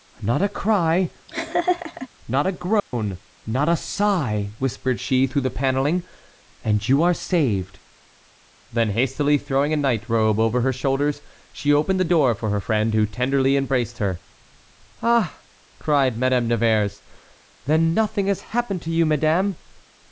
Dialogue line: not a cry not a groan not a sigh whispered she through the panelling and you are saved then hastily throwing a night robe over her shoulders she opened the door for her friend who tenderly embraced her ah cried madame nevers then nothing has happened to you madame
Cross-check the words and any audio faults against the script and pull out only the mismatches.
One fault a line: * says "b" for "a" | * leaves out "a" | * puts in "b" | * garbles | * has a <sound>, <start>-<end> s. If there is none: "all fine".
* has a laugh, 1.3-2.1 s
* has a dropout, 2.8-2.9 s